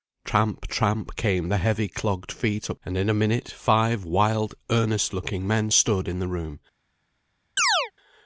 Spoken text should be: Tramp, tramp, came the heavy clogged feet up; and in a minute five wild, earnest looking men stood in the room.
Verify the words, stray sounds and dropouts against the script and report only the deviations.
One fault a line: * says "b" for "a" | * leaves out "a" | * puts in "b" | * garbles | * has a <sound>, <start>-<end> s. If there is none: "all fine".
* has a chirp, 7.6-7.9 s